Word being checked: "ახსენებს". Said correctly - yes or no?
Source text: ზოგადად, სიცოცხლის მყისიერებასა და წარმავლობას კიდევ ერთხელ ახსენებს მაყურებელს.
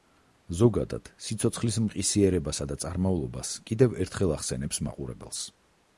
yes